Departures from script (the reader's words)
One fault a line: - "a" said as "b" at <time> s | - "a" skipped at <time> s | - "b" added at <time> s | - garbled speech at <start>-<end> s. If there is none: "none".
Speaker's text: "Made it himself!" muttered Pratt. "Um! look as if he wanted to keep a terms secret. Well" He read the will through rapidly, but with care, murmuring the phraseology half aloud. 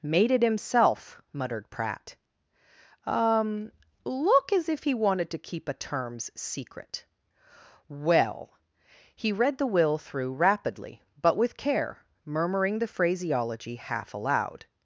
none